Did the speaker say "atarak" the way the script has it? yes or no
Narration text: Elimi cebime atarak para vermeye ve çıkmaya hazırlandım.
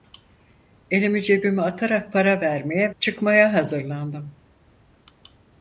yes